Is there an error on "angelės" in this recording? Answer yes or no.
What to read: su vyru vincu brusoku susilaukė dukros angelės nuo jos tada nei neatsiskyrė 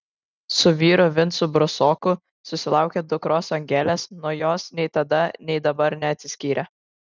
no